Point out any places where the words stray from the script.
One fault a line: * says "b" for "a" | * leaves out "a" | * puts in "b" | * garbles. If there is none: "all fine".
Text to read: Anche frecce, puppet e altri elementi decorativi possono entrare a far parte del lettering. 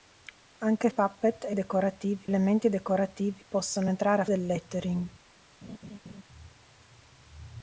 * leaves out "frecce"
* says "decorativi" for "altri"
* leaves out "far parte"